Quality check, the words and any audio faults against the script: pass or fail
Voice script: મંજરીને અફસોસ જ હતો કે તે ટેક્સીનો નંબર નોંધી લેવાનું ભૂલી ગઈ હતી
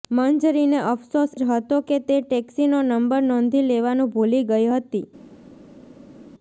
pass